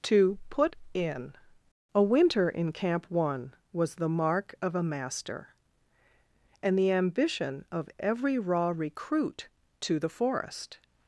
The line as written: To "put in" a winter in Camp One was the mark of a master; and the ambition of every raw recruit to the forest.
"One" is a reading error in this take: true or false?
false